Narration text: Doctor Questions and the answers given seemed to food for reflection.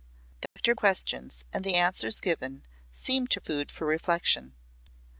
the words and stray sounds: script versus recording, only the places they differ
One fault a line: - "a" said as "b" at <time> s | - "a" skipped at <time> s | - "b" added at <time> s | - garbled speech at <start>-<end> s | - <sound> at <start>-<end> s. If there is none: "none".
- dropout at 0.5-0.6 s